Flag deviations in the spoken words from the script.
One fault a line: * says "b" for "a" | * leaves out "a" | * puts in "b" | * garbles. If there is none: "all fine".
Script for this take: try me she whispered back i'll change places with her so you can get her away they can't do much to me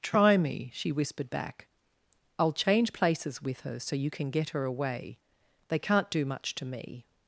all fine